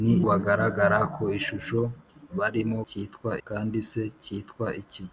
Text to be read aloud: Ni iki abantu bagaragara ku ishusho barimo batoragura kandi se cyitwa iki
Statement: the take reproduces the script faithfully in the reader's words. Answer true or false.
false